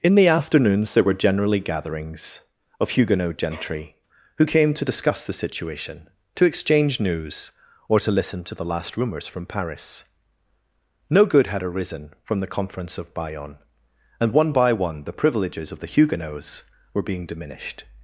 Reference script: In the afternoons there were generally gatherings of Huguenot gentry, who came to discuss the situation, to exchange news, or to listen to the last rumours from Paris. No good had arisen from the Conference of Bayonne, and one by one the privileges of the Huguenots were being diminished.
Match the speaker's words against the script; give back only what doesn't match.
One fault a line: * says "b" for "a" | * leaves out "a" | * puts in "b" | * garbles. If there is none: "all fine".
all fine